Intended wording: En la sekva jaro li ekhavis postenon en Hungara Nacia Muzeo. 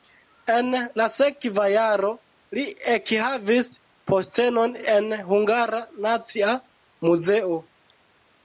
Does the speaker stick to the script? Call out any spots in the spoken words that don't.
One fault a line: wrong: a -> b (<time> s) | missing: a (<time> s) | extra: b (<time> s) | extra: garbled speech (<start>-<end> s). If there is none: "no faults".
no faults